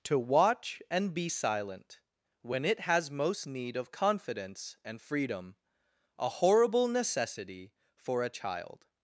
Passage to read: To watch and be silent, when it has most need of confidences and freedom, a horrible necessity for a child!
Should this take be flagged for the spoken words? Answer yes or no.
yes